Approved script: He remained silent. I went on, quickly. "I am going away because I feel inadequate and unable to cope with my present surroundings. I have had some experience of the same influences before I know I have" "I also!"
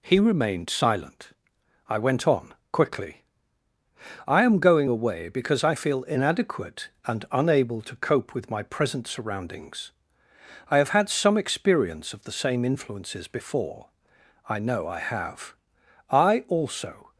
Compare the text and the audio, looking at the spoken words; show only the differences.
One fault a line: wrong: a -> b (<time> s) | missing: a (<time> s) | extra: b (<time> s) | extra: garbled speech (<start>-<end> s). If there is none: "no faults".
no faults